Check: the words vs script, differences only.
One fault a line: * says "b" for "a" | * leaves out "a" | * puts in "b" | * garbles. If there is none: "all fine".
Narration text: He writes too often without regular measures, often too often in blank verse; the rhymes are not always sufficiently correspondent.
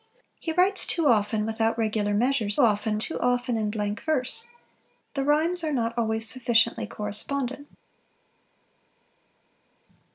all fine